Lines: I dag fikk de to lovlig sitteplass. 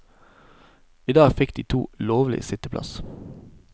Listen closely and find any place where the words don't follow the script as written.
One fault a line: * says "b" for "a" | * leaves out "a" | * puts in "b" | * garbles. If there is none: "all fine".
all fine